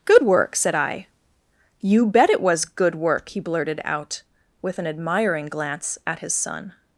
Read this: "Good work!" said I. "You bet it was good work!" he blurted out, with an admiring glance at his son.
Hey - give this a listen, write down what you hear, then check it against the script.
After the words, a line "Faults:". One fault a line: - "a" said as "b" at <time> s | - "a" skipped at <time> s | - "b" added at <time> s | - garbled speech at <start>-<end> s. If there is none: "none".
"Good work!" said I. "You bet it was good work!" he blurted out, with an admiring glance at his son.
Faults:
none